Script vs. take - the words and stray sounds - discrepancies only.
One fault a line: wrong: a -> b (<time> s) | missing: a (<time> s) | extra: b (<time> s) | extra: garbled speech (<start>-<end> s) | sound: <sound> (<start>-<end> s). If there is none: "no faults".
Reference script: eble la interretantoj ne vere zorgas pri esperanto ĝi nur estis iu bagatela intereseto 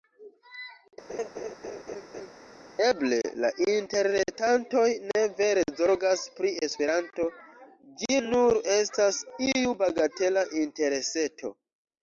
sound: laugh (1.1-2.3 s)
wrong: estis -> estas (8.8 s)